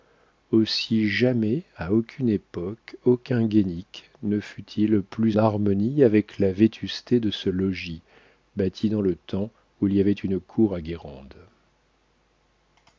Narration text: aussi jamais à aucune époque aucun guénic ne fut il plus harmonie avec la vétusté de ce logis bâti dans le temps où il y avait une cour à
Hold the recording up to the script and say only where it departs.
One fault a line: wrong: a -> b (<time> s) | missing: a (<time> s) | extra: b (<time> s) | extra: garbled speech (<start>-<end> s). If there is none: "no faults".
no faults